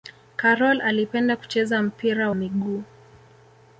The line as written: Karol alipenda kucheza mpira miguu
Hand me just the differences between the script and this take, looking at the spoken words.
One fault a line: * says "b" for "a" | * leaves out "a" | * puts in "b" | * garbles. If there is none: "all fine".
all fine